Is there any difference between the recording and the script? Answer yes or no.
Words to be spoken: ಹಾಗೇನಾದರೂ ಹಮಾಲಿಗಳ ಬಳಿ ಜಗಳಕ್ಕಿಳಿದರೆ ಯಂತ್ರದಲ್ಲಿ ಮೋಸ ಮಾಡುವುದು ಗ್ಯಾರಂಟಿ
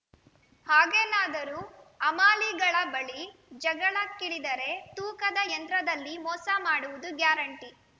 yes